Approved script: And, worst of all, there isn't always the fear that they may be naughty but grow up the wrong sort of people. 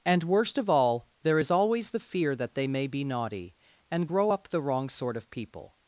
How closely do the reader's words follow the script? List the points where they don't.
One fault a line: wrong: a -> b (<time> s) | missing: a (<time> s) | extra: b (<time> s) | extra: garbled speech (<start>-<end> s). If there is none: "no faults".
wrong: isn't -> is (1.4 s)
wrong: but -> and (3.9 s)